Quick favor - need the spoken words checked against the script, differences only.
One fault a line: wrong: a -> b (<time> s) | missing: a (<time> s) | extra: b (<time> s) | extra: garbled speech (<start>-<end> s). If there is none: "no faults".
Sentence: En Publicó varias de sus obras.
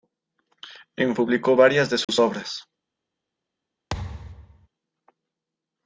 no faults